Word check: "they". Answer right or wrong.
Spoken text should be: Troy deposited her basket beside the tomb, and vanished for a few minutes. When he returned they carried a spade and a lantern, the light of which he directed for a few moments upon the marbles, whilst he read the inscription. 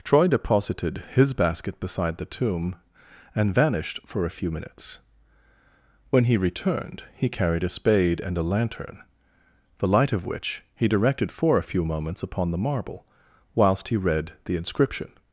wrong